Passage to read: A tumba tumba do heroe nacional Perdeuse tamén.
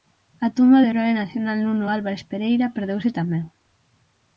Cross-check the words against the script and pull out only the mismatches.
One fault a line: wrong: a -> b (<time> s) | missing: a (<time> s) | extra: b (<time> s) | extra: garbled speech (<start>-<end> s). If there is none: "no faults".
missing: tumba (0.8 s)
extra: Nuno Álvares Pereira (1.6 s)